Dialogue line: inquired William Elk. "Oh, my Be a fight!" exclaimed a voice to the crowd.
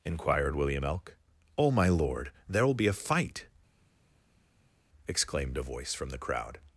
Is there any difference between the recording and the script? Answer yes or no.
yes